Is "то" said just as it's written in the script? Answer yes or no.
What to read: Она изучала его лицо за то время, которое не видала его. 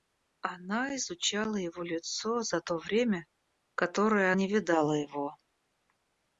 yes